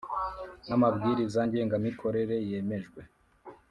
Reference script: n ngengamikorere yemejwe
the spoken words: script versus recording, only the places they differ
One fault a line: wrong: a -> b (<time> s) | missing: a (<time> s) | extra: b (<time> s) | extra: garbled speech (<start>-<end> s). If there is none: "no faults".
extra: amabwiriza (0.7 s)